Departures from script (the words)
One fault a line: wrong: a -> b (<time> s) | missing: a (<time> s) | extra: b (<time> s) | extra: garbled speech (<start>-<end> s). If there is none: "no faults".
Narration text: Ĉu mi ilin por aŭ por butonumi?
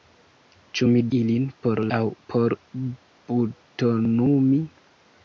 no faults